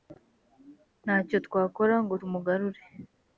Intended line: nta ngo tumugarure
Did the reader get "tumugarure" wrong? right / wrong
right